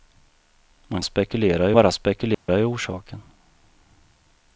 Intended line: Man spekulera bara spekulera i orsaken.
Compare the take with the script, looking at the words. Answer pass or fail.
pass